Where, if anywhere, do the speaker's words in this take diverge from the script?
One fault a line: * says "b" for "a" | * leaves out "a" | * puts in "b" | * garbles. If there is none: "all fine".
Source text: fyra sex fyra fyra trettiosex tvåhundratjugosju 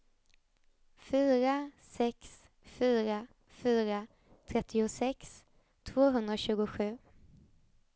all fine